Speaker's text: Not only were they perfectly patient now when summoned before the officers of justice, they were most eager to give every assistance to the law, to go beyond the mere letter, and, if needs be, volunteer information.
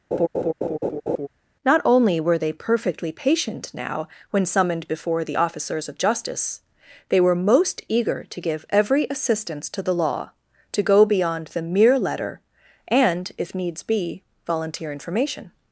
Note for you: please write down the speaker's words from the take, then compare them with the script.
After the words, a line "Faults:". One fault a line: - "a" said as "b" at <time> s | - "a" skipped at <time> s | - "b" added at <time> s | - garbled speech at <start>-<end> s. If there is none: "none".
Not only were they perfectly patient now when summoned before the officers of justice, they were most eager to give every assistance to the law, to go beyond the mere letter, and, if needs be, volunteer information.
Faults:
none